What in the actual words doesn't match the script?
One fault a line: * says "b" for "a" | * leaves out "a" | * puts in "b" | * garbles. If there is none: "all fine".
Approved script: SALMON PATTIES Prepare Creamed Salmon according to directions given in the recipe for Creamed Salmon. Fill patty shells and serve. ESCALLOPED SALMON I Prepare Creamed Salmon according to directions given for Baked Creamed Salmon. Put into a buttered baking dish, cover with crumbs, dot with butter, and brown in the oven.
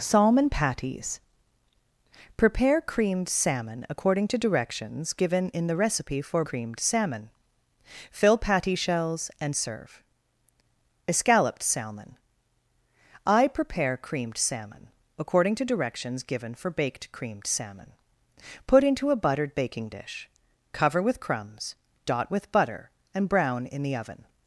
all fine